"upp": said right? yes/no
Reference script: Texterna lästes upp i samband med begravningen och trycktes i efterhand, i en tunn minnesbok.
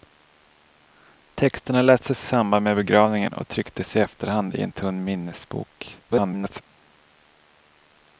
no